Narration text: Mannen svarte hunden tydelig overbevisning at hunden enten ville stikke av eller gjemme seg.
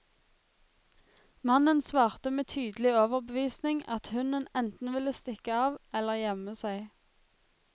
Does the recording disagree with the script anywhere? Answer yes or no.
yes